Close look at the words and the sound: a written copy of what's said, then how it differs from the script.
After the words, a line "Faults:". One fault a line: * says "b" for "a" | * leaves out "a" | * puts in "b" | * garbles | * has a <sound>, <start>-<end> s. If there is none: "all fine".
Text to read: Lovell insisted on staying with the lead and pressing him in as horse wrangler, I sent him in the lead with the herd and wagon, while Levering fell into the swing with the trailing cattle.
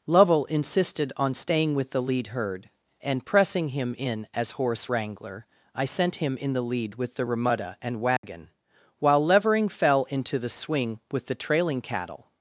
Lovell insisted on staying with the lead herd, and pressing him in as horse wrangler, I sent him in the lead with the remuda and wagon, while Levering fell into the swing with the trailing cattle.
Faults:
* puts in "herd"
* says "remuda" for "herd"
* has a dropout, 8.2-8.2 s